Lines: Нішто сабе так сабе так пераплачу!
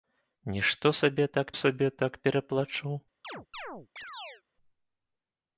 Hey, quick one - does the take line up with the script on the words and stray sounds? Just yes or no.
no